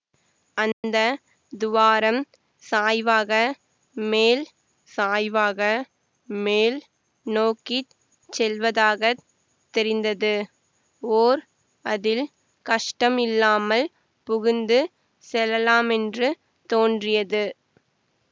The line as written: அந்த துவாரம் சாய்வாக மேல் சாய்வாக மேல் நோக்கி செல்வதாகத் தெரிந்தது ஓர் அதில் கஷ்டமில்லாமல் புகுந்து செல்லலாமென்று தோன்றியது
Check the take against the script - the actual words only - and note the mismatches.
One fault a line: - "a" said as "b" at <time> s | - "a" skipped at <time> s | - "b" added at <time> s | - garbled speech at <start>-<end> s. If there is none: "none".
none